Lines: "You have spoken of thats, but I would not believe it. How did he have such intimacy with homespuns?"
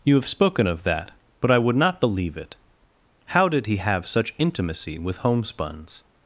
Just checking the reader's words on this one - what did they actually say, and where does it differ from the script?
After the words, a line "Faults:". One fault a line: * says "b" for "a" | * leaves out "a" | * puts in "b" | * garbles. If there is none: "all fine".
"You have spoken of that, but I would not believe it. How did he have such intimacy with homespuns?"
Faults:
* says "that" for "thats"